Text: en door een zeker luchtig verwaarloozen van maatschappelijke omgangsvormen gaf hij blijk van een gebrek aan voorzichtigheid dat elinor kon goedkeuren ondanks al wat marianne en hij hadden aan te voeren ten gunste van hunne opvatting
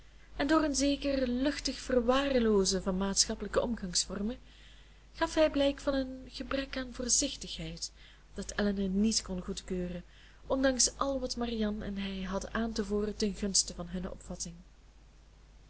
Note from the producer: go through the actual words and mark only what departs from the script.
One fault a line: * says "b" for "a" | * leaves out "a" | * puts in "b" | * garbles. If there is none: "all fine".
* puts in "niet"